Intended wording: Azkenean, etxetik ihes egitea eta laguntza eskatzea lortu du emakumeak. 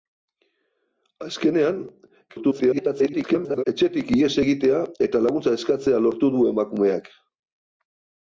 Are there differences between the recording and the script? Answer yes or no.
yes